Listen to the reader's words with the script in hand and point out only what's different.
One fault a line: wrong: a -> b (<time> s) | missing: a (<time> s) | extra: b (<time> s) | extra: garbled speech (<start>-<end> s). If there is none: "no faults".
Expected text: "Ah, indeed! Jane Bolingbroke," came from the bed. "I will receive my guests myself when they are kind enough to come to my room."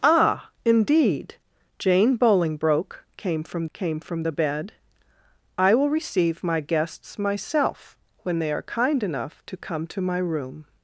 extra: came from (3.7 s)